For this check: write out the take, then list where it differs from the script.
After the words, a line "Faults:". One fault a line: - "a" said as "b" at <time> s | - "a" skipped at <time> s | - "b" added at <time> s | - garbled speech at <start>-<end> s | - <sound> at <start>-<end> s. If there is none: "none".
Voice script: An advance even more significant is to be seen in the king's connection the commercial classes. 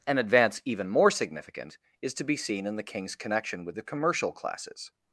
An advance even more significant is to be seen in the king's connection with the commercial classes.
Faults:
- "with" added at 3.6 s